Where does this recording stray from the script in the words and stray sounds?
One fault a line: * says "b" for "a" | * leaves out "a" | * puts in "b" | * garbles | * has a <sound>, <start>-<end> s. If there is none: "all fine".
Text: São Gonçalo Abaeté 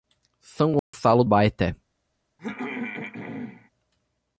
* has a dropout, 0.8-0.9 s
* has a throat clearing, 2.4-3.7 s